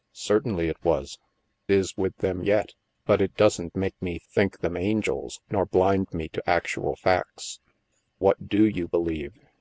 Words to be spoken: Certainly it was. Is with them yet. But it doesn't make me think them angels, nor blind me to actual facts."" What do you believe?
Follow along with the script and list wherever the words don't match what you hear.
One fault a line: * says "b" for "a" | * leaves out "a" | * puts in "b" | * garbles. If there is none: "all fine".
all fine